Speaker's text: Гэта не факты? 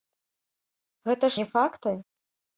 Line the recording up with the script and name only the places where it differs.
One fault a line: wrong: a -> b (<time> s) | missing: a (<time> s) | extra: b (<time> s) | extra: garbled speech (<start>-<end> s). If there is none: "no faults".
no faults